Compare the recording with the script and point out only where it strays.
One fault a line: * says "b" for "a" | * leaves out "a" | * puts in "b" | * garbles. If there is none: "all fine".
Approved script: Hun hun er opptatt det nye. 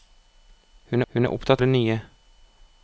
all fine